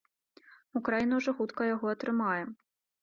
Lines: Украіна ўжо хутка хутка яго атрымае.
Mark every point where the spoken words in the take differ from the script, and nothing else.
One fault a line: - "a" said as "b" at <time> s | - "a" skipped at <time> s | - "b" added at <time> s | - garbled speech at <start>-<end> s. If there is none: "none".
- "хутка" skipped at 1.6 s